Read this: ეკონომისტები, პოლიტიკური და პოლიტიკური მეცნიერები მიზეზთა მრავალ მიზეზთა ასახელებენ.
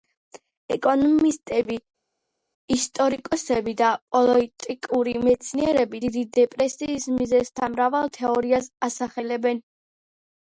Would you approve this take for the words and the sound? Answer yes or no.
no